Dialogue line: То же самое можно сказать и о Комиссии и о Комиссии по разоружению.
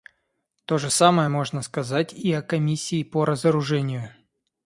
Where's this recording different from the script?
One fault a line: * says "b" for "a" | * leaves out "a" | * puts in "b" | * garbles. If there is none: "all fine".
* leaves out "и о Комиссии"